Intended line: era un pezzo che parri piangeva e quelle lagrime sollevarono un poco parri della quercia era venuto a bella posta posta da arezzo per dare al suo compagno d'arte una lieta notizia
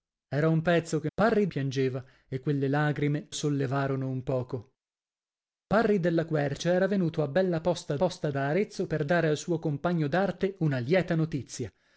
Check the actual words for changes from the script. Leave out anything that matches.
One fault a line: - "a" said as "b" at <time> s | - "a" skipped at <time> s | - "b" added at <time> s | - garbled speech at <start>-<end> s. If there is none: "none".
none